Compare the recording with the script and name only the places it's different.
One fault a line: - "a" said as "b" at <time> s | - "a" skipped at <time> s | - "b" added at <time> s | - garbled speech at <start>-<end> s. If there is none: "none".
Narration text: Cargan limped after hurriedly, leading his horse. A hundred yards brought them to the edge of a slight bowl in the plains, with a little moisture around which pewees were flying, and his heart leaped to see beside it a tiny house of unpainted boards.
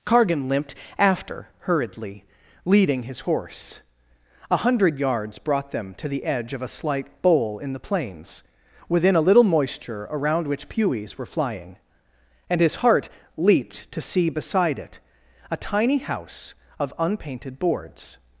- "with" said as "within" at 8.9 s